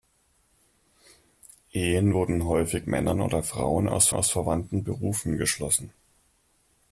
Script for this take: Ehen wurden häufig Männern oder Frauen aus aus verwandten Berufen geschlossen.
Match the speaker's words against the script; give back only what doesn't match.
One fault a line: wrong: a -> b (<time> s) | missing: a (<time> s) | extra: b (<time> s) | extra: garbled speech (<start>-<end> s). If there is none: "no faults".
no faults